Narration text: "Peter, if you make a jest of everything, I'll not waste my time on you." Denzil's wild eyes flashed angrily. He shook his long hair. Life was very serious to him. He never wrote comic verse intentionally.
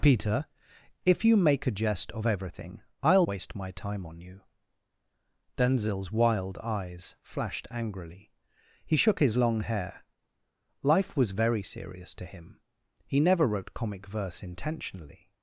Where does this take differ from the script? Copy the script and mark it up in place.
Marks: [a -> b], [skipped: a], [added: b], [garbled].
"Peter, if you make a jest of everything, I'll [skipped: not] waste my time on you." Denzil's wild eyes flashed angrily. He shook his long hair. Life was very serious to him. He never wrote comic verse intentionally.